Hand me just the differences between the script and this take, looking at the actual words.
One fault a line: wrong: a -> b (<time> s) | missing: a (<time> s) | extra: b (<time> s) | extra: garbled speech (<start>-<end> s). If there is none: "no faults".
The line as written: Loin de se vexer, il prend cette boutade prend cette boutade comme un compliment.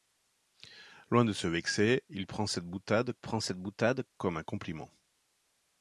no faults